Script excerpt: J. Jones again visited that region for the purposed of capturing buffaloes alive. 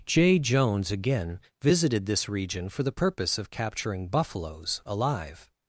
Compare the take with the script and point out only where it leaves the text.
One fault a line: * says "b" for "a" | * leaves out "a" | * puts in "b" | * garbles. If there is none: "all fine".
* says "this" for "that"
* says "purpose" for "purposed"